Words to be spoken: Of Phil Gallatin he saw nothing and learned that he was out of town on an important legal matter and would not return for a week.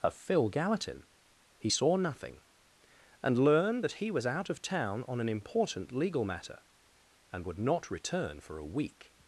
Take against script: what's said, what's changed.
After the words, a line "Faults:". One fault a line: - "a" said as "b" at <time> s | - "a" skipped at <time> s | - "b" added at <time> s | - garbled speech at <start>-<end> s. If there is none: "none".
Of Phil Gallatin he saw nothing and learned that he was out of town on an important legal matter and would not return for a week.
Faults:
none